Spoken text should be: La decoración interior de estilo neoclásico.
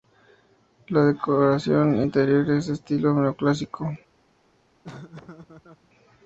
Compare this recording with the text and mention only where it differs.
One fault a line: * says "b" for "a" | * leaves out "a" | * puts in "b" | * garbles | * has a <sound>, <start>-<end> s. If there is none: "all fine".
* puts in "es"
* has a laugh, 4.8-5.9 s